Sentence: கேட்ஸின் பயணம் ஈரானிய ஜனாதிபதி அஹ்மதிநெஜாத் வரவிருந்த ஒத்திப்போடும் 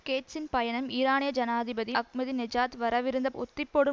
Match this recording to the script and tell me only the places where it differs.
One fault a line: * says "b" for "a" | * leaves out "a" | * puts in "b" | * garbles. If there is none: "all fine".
all fine